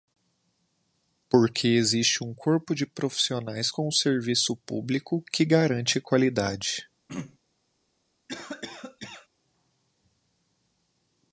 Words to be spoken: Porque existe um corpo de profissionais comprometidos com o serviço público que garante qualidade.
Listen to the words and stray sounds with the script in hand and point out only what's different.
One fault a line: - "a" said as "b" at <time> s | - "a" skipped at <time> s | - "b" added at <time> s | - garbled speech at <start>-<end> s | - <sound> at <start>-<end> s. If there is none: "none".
- "comprometidos" skipped at 3.7 s
- throat clearing at 7.1-7.4 s
- cough at 8.3-9.3 s